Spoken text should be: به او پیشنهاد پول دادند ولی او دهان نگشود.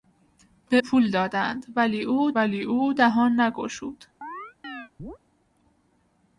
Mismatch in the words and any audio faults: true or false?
true